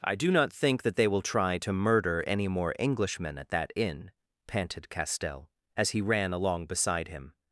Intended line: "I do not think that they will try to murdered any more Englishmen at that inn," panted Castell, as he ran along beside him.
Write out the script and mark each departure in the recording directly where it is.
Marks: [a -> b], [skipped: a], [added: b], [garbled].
"I do not think that they will try to [murdered -> murder] any more Englishmen at that inn," panted Castell, as he ran along beside him.